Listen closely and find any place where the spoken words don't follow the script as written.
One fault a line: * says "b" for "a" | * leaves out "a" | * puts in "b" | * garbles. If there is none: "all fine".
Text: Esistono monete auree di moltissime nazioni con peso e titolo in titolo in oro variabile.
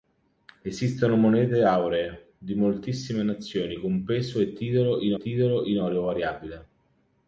all fine